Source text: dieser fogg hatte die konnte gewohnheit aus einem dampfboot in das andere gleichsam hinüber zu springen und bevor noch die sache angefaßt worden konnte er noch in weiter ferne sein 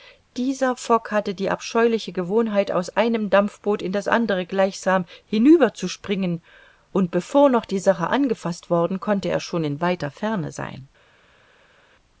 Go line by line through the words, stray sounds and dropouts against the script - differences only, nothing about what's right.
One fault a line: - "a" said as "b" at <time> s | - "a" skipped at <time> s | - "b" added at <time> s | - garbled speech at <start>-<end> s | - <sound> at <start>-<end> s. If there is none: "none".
- "konnte" said as "abscheuliche" at 1.5 s
- "noch" said as "schon" at 9.4 s